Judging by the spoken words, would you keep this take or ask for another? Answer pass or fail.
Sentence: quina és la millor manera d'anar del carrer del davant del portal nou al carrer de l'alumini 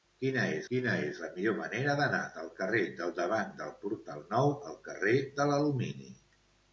fail